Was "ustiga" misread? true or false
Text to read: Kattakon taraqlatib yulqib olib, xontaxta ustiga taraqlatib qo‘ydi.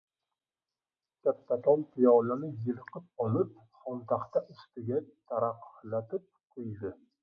false